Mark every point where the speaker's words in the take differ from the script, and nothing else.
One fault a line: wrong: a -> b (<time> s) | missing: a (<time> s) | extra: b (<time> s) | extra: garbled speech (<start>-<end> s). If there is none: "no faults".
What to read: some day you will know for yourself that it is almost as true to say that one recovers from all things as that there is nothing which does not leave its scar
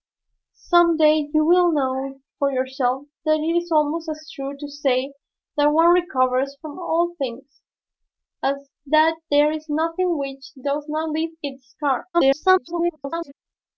extra: garbled speech (12.1-13.3 s)